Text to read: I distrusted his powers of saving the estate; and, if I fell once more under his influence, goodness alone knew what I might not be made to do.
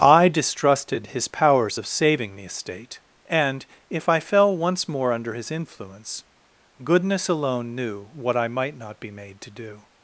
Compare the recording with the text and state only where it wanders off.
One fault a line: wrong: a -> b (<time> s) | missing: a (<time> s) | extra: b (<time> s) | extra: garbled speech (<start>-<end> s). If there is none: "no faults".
no faults